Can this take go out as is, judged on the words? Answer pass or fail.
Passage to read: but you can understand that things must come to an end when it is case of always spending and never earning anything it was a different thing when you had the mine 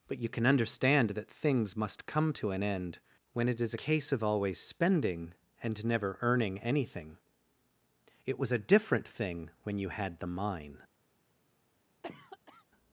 pass